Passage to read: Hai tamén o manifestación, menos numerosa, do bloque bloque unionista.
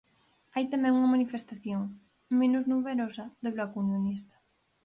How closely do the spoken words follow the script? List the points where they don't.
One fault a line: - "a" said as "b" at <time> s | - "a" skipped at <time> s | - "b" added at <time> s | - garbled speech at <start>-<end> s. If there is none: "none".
- "o" said as "unha" at 1.0 s
- "bloque" skipped at 3.8 s